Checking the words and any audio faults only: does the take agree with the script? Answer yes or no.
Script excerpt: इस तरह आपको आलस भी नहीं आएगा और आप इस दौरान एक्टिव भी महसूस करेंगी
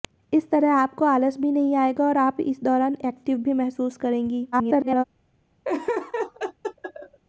no